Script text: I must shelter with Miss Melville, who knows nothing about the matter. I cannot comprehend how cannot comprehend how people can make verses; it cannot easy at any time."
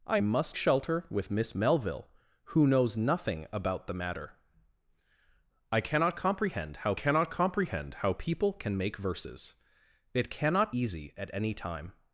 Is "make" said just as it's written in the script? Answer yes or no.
yes